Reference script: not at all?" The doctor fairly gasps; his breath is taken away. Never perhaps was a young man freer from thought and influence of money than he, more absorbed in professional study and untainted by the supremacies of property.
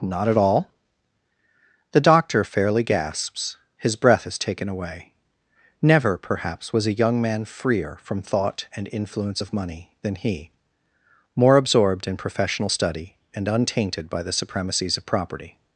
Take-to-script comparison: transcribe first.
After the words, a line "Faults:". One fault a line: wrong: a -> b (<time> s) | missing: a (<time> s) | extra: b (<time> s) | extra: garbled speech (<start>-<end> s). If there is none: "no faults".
not at all?" The doctor fairly gasps; his breath is taken away. Never perhaps was a young man freer from thought and influence of money than he, more absorbed in professional study and untainted by the supremacies of property.
Faults:
no faults